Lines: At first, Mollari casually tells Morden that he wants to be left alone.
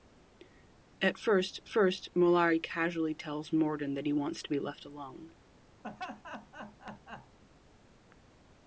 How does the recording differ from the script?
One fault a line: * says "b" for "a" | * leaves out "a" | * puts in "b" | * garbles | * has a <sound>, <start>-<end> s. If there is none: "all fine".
* puts in "first"
* has a laugh, 5.8-7.4 s